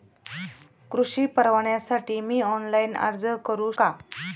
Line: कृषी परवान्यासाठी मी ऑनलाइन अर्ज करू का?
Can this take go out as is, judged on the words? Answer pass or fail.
pass